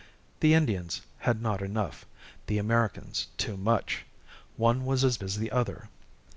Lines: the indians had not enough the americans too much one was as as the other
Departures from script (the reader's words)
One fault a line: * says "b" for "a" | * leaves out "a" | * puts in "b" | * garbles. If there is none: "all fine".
all fine